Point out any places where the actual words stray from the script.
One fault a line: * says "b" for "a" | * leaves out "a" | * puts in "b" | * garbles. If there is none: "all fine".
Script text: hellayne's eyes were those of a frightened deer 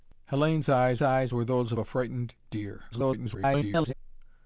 * puts in "eyes"
* leaves out "of"
* garbles